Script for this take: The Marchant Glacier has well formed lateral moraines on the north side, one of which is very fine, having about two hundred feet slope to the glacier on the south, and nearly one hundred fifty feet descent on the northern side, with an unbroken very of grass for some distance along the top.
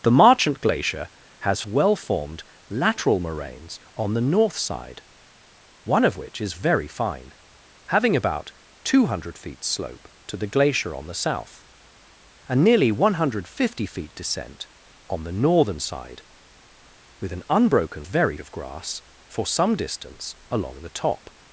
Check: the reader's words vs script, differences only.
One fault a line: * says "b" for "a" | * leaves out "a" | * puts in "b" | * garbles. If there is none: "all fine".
all fine